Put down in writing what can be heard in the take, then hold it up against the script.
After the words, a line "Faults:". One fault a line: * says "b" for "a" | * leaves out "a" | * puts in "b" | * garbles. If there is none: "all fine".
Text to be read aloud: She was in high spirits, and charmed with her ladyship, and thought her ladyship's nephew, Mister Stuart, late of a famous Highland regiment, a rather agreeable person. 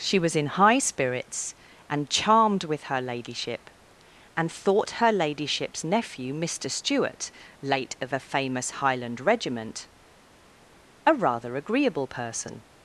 She was in high spirits, and charmed with her ladyship, and thought her ladyship's nephew, Mister Stuart, late of a famous Highland regiment, a rather agreeable person.
Faults:
all fine